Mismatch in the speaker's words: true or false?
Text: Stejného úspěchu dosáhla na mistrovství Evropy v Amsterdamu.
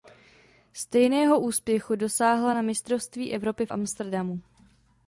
false